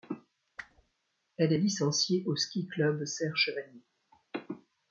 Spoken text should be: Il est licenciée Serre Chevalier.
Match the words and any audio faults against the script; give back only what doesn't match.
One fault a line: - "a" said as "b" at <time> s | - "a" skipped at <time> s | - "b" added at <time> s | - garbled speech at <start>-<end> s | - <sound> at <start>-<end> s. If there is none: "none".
- whoosh at 0.6-0.9 s
- "Il" said as "Elle" at 1.4 s
- "au Ski Club" added at 2.2 s